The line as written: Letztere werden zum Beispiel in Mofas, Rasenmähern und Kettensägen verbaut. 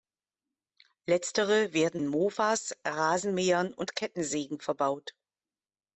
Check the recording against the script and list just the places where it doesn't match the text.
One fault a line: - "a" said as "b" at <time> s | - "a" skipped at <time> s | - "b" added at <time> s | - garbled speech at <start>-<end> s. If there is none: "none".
- "zum Beispiel" skipped at 2.0 s